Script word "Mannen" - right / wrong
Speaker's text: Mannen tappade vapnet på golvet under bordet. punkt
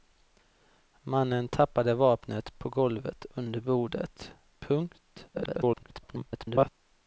right